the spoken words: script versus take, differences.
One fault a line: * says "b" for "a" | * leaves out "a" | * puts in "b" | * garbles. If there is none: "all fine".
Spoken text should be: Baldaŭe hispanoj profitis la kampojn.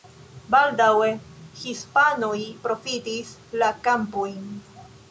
all fine